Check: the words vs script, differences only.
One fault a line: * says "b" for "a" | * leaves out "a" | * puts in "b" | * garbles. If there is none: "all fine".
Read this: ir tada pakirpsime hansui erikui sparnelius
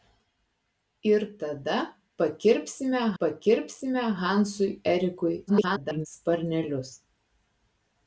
* puts in "pakirpsime"
* garbles